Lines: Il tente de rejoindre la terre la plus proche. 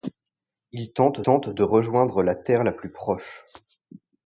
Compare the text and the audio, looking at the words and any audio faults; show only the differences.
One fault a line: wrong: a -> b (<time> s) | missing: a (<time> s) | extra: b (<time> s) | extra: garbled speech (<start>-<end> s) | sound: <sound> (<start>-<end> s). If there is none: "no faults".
extra: tente (1.2 s)